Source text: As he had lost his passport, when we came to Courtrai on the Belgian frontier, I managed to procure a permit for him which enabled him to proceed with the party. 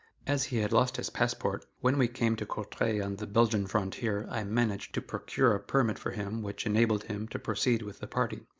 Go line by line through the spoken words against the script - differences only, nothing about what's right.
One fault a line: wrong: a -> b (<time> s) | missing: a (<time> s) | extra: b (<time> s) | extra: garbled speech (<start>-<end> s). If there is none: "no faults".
no faults